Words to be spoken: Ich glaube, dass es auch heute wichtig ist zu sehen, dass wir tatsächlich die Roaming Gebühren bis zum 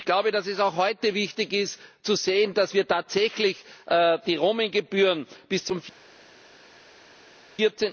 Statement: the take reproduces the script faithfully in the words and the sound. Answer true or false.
true